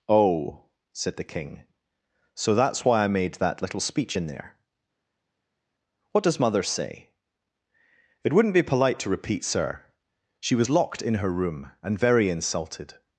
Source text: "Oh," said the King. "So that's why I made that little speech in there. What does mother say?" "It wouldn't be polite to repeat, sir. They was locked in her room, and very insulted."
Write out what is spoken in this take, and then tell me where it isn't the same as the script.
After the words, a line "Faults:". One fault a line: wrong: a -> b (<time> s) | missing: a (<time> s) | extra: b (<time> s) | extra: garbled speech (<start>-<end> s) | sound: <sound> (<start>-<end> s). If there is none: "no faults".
"Oh," said the King. "So that's why I made that little speech in there. What does mother say?" "It wouldn't be polite to repeat, sir. She was locked in her room, and very insulted."
Faults:
wrong: They -> She (10.4 s)